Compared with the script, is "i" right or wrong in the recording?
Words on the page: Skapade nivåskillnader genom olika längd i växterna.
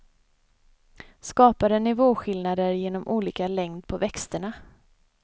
wrong